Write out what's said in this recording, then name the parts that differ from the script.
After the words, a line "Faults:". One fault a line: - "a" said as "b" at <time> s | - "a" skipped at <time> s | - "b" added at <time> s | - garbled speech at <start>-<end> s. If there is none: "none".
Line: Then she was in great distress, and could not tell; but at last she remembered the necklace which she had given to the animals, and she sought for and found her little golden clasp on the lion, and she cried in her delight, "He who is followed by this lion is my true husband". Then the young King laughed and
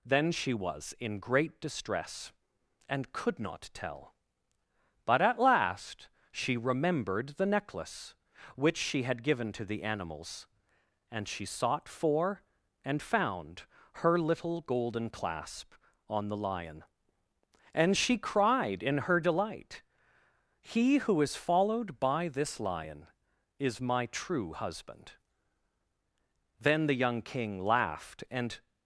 Then she was in great distress, and could not tell; but at last she remembered the necklace which she had given to the animals, and she sought for and found her little golden clasp on the lion, and she cried in her delight, "He who is followed by this lion is my true husband". Then the young King laughed and
Faults:
none